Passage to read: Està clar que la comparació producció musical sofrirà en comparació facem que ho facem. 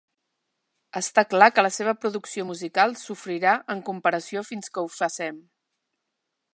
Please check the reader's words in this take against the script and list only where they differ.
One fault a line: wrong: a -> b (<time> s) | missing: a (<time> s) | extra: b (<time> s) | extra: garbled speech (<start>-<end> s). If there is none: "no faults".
wrong: comparació -> seva (1.8 s)
wrong: facem -> fins (4.5 s)